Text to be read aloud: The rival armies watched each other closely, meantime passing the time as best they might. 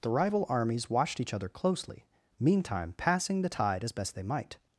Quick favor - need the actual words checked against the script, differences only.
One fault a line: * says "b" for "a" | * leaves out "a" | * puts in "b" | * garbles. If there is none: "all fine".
* says "tide" for "time"